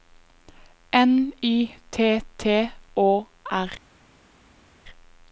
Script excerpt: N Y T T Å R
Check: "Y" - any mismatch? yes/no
no